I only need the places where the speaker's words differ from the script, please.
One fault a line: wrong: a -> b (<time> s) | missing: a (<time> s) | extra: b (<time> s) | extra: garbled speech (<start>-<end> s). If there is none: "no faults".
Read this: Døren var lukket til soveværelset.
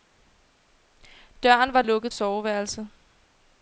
missing: til (2.1 s)